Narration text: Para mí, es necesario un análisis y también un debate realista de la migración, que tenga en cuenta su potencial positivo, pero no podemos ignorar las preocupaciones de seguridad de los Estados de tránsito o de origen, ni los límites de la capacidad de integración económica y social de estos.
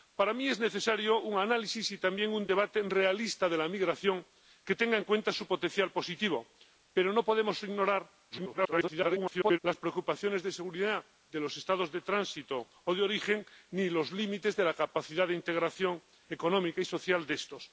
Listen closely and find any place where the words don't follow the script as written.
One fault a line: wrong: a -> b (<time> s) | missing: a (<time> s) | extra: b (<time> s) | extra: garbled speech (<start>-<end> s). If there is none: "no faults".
extra: garbled speech (8.3-9.6 s)